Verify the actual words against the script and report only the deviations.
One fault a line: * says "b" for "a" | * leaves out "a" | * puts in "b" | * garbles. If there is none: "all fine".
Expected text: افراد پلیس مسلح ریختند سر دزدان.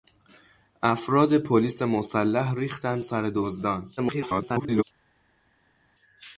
* garbles